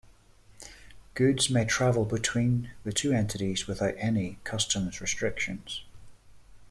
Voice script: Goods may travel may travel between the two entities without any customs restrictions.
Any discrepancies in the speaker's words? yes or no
yes